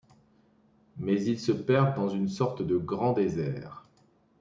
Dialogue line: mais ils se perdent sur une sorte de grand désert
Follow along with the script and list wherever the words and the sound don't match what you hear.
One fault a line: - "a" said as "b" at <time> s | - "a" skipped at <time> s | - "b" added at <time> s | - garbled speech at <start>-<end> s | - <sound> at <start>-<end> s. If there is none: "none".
- "sur" said as "dans" at 1.9 s